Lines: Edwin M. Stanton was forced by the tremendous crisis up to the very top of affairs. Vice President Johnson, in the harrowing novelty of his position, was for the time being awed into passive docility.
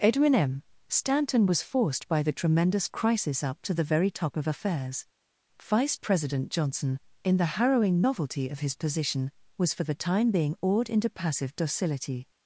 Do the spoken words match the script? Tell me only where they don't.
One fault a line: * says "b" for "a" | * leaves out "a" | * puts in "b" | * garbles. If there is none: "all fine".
all fine